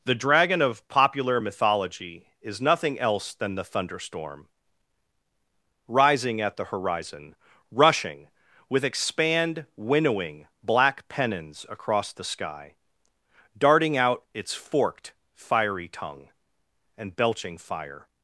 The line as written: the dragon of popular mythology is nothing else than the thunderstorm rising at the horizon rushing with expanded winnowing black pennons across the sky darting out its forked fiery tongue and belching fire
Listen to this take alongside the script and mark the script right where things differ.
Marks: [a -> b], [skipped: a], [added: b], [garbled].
the dragon of popular mythology is nothing else than the thunderstorm rising at the horizon rushing with [expanded -> expand] winnowing black pennons across the sky darting out its forked fiery tongue and belching fire